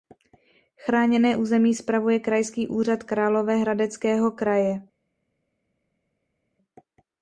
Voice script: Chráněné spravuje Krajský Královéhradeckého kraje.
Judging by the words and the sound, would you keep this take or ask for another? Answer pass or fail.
fail